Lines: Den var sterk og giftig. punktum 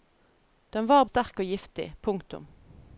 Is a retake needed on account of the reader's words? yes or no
no